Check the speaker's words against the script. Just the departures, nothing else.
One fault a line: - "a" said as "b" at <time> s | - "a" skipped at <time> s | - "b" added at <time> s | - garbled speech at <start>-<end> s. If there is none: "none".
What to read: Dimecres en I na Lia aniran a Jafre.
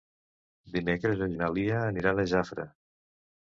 none